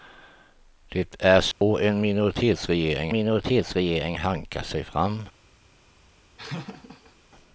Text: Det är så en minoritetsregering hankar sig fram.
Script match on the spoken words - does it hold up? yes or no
no